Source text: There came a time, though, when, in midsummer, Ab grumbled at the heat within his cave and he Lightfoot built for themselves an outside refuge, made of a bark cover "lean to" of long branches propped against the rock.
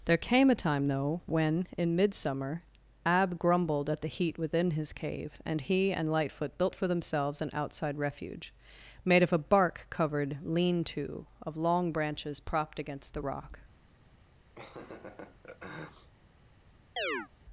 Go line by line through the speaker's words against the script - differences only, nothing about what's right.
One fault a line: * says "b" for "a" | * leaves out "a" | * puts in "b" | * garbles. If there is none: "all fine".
* puts in "and"
* says "covered" for "cover"